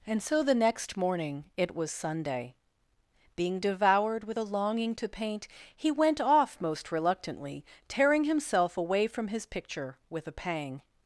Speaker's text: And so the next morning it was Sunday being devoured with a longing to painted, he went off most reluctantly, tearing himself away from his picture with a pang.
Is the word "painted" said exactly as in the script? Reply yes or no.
no